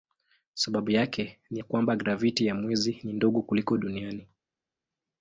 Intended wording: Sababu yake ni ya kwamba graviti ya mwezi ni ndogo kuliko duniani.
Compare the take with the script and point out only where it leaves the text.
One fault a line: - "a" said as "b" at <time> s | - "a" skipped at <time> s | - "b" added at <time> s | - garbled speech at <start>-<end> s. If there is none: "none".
none